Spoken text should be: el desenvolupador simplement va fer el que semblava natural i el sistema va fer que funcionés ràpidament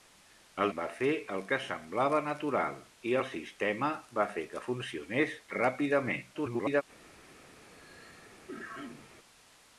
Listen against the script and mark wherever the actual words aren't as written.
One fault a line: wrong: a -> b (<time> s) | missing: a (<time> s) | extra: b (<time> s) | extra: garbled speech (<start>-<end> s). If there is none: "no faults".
missing: desenvolupador simplement (0.7 s)
extra: garbled speech (6.3-6.8 s)